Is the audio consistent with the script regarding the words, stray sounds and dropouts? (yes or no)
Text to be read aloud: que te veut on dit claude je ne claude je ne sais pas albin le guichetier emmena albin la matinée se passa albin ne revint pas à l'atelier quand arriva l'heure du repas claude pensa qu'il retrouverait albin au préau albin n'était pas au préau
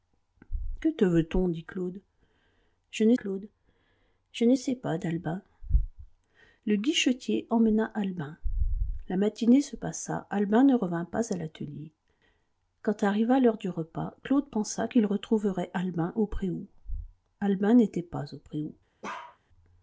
no